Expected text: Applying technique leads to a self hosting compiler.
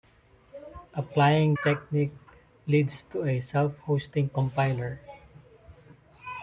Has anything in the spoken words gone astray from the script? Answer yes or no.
no